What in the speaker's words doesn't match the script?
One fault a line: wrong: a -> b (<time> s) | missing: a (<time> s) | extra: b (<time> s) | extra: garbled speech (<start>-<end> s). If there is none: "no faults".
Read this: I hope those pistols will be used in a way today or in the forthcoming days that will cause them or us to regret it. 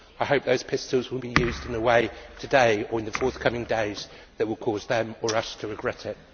no faults